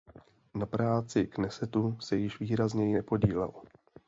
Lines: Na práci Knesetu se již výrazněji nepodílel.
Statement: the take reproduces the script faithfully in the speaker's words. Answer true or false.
true